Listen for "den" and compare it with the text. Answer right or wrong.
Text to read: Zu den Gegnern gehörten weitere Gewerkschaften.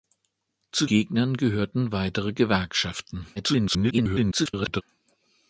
wrong